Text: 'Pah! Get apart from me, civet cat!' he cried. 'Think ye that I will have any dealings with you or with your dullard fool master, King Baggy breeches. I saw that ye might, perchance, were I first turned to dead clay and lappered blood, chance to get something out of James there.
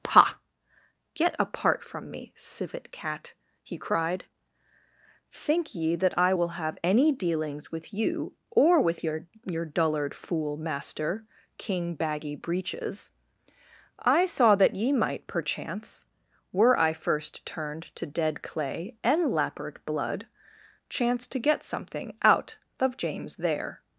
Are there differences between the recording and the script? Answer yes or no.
yes